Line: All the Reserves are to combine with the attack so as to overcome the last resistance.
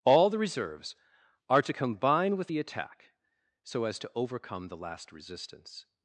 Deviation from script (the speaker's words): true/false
false